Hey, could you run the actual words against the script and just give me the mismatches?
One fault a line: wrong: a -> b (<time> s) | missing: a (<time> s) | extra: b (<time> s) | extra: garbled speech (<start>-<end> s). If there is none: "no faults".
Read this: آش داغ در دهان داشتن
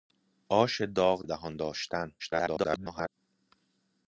missing: در (1.2 s)
extra: garbled speech (2.2-3.1 s)